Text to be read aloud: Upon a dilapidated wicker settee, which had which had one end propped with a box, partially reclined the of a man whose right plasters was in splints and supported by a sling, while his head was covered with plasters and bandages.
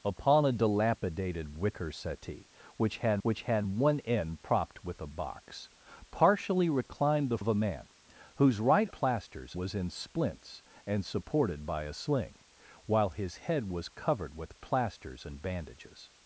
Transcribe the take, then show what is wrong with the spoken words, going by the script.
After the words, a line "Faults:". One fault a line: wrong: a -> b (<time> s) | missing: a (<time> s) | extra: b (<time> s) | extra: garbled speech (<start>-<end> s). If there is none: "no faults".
Upon a dilapidated wicker settee, which had which had one end propped with a box, partially reclined the of a man whose right plasters was in splints and supported by a sling, while his head was covered with plasters and bandages.
Faults:
no faults